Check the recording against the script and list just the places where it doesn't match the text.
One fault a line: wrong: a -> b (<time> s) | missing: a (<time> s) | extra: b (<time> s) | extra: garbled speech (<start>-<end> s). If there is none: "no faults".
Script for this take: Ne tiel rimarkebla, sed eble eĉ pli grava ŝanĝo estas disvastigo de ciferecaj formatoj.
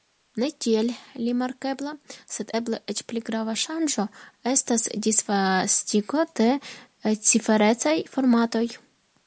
no faults